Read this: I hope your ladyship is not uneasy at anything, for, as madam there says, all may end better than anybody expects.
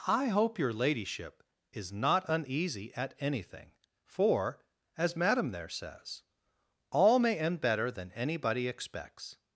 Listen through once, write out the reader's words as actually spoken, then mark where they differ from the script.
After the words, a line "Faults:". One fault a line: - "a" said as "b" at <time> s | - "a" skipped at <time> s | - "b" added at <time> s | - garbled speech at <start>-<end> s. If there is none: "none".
I hope your ladyship is not uneasy at anything, for, as madam there says, all may end better than anybody expects.
Faults:
none